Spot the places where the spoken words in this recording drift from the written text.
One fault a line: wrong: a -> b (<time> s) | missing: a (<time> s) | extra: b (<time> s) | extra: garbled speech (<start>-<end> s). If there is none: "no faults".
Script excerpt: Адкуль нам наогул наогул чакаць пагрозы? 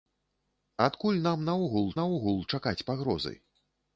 no faults